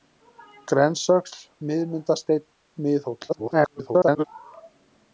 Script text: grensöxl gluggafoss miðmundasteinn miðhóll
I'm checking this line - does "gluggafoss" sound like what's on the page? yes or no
no